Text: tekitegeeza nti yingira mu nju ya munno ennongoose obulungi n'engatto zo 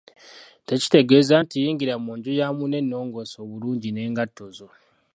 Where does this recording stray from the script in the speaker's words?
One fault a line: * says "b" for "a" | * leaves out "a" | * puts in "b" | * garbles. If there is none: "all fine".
all fine